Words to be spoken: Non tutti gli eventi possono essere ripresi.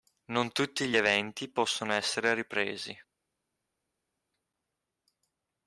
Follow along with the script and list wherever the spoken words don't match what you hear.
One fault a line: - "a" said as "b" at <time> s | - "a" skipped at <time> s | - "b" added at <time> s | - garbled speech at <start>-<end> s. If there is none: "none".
none